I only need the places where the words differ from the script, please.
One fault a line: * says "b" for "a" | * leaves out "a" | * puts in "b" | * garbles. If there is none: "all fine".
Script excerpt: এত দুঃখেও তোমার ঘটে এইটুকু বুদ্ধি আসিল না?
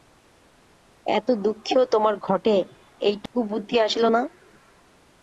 all fine